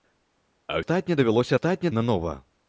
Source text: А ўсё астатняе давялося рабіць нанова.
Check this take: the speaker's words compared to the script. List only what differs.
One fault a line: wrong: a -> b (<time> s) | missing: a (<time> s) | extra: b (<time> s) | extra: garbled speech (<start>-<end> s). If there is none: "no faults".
missing: ўсё (0.8 s)
wrong: рабіць -> астатняе (1.5 s)